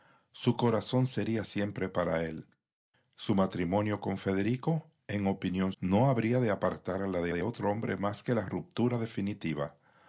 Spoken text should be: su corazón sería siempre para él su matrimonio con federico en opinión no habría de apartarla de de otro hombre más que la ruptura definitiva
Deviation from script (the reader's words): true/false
false